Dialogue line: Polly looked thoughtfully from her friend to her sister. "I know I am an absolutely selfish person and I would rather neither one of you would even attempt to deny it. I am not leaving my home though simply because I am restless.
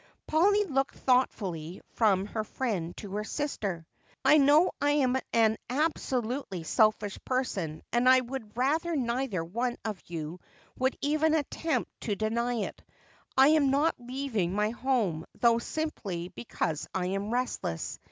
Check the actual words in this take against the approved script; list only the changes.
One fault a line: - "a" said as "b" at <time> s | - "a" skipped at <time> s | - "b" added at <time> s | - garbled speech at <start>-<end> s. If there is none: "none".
none